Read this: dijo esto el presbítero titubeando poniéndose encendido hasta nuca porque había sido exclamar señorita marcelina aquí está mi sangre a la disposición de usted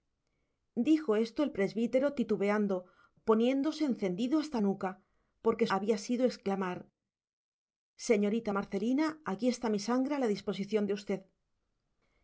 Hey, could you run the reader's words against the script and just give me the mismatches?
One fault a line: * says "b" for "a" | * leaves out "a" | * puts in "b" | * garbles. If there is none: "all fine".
all fine